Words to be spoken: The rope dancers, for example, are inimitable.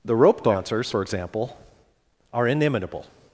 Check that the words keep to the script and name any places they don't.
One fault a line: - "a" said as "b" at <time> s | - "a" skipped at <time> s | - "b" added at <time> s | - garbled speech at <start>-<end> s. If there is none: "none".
none